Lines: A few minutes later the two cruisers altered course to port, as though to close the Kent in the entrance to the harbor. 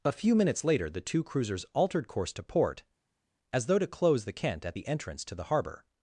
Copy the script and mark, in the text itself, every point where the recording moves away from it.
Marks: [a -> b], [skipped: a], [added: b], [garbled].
A few minutes later the two cruisers altered course to port, as though to close the Kent [in -> at] the entrance to the harbor.